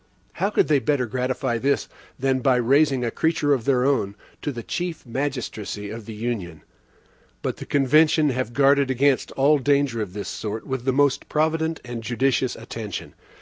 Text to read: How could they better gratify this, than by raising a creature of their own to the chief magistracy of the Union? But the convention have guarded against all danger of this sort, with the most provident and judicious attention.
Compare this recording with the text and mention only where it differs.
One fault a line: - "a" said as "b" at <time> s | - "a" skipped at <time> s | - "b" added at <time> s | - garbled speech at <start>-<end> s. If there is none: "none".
none